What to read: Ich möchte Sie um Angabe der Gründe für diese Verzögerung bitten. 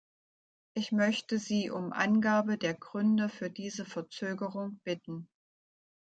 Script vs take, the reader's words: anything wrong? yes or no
no